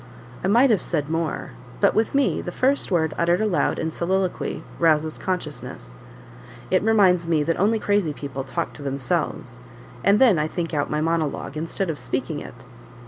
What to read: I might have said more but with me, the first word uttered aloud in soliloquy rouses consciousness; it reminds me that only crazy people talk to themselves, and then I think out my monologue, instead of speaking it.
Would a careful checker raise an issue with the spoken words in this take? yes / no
no